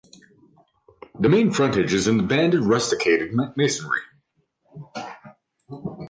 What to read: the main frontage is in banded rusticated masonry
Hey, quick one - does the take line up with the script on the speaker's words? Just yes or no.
yes